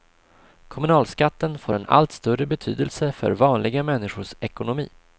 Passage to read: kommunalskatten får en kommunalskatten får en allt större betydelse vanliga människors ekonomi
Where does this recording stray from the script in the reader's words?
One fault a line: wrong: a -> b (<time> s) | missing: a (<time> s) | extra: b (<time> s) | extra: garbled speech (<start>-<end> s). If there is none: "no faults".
missing: kommunalskatten får en (1.9 s)
extra: för (3.1 s)